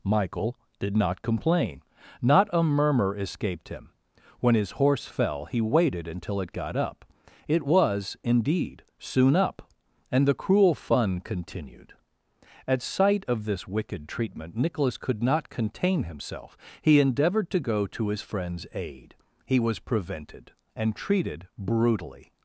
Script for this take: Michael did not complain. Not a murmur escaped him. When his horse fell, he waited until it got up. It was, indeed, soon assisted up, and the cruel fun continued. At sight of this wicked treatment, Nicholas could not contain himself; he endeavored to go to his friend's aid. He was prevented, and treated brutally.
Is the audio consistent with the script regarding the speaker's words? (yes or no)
no